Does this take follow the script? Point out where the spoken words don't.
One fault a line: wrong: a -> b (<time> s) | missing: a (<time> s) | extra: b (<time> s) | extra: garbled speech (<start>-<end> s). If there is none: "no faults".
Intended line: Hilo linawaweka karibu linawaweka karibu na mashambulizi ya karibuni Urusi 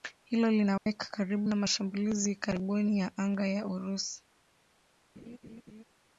missing: linawaweka karibu (1.5 s)
extra: ya anga ya (3.0 s)